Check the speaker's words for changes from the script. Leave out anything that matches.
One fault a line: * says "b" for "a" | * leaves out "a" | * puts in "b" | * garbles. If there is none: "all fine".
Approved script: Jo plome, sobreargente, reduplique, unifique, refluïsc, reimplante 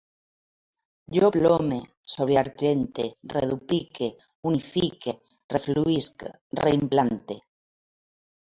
all fine